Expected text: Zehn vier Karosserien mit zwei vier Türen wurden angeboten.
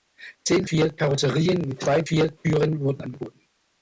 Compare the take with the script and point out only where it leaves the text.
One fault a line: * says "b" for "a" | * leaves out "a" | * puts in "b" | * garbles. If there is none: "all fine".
all fine